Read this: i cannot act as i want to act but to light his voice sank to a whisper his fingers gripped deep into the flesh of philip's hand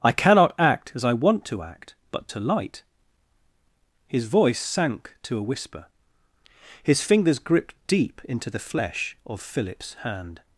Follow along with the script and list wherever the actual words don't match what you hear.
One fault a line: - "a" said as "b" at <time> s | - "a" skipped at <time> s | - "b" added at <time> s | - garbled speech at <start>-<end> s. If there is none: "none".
none